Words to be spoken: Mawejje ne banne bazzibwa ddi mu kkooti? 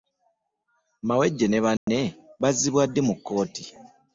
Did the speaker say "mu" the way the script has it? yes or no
yes